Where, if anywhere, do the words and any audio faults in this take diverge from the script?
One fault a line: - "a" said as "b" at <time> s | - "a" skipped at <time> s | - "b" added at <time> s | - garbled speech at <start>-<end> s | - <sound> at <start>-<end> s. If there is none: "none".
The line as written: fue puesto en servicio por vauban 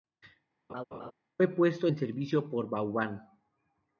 - laugh at 0.7-1.1 s